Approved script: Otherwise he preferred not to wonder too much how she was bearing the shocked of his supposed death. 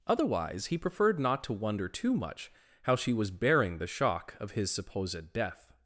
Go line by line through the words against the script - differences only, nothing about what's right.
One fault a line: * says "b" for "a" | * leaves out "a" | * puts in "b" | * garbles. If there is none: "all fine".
* says "shock" for "shocked"